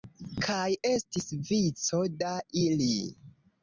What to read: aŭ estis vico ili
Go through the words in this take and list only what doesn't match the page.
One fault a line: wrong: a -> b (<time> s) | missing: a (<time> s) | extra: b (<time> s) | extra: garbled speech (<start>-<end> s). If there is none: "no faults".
wrong: aŭ -> kaj (0.5 s)
extra: da (2.2 s)